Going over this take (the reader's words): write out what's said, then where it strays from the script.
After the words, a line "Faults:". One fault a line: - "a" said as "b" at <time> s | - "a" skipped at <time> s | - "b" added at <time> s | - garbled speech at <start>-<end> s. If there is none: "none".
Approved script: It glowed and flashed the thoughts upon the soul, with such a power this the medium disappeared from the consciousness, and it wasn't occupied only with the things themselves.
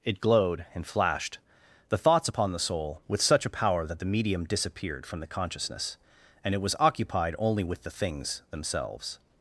It glowed and flashed the thoughts upon the soul, with such a power that the medium disappeared from the consciousness, and it was occupied only with the things themselves.
Faults:
- "this" said as "that" at 3.9 s
- "wasn't" said as "was" at 6.6 s